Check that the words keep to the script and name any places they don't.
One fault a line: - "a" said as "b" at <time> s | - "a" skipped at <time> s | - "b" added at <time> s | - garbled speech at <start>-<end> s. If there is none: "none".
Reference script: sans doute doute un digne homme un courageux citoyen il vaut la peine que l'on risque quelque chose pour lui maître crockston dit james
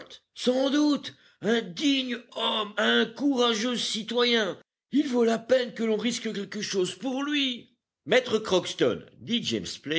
- "doute" skipped at 1.1 s